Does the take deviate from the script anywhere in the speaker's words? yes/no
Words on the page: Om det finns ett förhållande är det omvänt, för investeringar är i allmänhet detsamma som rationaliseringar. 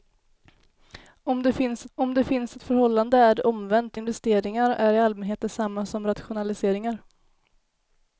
yes